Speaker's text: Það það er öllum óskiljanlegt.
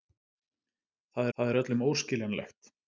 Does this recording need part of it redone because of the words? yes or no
no